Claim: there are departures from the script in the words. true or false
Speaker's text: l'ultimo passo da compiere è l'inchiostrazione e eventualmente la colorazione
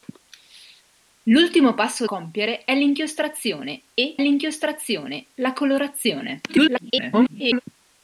true